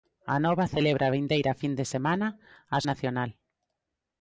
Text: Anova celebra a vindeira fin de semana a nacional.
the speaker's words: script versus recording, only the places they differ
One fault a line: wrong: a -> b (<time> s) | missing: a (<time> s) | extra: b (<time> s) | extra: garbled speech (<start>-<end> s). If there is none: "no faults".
no faults